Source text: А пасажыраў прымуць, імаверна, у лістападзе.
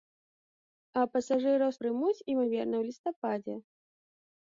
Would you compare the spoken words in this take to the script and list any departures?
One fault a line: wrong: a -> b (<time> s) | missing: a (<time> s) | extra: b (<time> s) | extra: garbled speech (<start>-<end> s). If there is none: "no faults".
no faults